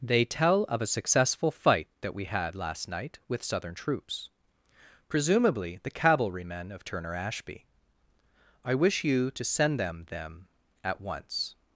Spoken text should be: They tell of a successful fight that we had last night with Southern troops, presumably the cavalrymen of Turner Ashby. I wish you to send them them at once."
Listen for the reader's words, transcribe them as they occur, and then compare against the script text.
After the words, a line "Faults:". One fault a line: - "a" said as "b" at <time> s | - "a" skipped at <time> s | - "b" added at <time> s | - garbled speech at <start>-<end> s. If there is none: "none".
They tell of a successful fight that we had last night with Southern troops, presumably the cavalrymen of Turner Ashby. I wish you to send them them at once."
Faults:
none